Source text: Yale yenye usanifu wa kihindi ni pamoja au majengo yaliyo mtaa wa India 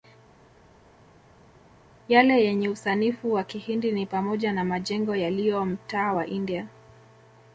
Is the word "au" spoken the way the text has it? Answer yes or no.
no